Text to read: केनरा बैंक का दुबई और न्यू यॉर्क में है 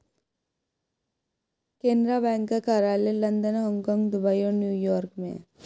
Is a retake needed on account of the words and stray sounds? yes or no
yes